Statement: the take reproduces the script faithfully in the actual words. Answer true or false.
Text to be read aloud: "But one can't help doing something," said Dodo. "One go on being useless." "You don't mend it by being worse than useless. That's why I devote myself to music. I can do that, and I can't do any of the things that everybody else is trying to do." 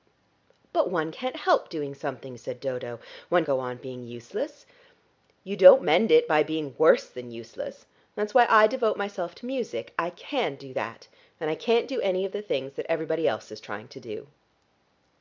true